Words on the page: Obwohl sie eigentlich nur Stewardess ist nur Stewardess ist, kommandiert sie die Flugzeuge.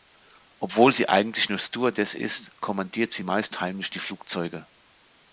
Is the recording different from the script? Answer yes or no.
yes